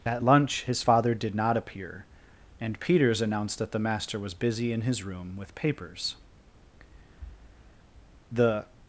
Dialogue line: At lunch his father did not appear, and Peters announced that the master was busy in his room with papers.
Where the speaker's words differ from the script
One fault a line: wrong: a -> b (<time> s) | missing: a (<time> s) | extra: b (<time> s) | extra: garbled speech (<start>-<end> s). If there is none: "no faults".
extra: The (8.3 s)